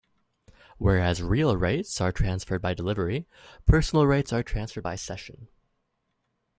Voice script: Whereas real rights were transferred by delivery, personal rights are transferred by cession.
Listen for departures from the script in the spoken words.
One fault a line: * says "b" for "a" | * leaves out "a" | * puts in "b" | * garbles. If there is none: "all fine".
* says "are" for "were"